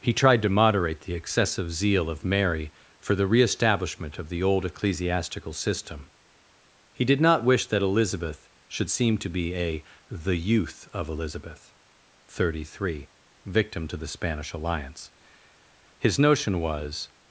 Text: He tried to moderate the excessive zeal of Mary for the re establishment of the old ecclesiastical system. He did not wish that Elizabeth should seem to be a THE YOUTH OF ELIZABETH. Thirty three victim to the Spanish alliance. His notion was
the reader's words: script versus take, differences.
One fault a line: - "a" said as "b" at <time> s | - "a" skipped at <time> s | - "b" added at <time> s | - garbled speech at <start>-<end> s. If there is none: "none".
none